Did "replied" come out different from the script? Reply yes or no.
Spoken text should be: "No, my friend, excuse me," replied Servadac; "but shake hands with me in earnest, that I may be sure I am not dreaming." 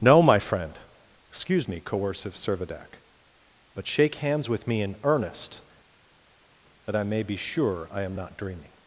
yes